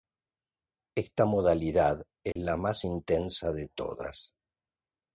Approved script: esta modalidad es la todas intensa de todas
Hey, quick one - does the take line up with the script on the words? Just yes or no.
no